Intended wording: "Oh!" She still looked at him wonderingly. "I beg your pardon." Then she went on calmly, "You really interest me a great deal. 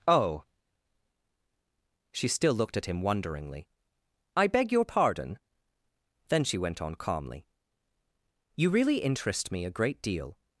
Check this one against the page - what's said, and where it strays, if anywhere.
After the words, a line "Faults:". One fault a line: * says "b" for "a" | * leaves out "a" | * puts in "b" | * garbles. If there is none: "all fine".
"Oh!" She still looked at him wonderingly. "I beg your pardon." Then she went on calmly, "You really interest me a great deal.
Faults:
all fine